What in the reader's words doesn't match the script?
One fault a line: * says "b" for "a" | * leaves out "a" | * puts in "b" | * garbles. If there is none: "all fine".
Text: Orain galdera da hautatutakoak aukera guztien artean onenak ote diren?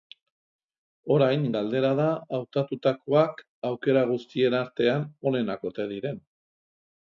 all fine